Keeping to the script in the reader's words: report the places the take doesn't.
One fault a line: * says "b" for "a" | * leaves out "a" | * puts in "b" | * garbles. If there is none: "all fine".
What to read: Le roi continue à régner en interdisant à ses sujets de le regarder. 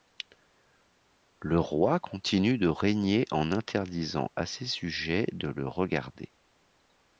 * says "de" for "à"